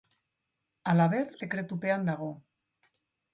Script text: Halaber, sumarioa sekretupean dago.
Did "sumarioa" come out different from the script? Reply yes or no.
yes